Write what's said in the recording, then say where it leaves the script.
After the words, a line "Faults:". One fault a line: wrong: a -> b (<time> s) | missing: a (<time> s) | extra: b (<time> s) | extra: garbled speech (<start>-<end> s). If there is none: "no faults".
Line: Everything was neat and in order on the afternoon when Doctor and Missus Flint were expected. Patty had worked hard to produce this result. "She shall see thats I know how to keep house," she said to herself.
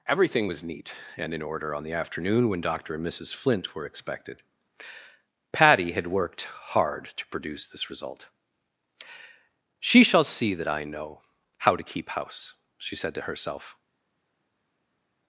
Everything was neat and in order on the afternoon when Doctor and Missus Flint were expected. Patty had worked hard to produce this result. "She shall see that I know how to keep house," she said to herself.
Faults:
wrong: thats -> that (10.5 s)